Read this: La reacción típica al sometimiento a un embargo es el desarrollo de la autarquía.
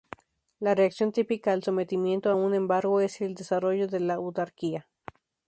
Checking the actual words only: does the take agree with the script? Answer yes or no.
yes